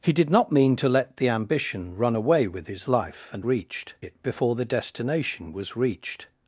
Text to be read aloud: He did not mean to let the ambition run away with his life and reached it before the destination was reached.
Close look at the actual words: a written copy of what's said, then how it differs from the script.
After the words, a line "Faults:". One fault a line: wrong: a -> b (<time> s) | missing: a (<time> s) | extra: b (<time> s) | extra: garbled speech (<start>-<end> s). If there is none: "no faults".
He did not mean to let the ambition run away with his life and reached it before the destination was reached.
Faults:
no faults